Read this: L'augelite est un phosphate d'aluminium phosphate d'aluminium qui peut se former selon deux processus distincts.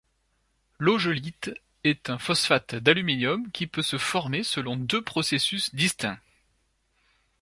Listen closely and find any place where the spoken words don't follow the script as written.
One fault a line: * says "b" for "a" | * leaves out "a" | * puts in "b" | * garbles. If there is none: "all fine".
* leaves out "phosphate d'aluminium"